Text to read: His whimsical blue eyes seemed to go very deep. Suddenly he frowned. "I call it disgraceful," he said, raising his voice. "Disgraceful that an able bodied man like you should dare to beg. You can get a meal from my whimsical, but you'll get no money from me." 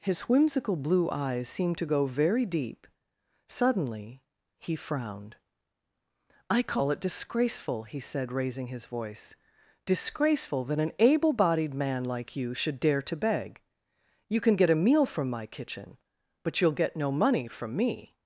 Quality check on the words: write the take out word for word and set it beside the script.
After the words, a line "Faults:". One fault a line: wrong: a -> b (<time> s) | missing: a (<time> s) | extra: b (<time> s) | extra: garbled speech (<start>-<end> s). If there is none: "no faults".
His whimsical blue eyes seemed to go very deep. Suddenly he frowned. "I call it disgraceful," he said, raising his voice. "Disgraceful that an able bodied man like you should dare to beg. You can get a meal from my kitchen, but you'll get no money from me."
Faults:
wrong: whimsical -> kitchen (15.4 s)